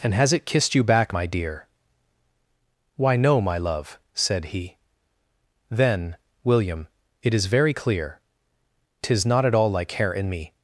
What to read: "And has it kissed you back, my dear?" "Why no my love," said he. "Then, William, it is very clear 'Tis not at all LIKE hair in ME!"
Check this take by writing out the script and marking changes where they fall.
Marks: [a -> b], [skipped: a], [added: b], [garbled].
"And has it kissed you back, my dear?" "Why no my love," said he. "Then, William, it is very clear 'Tis not at all LIKE hair in ME!"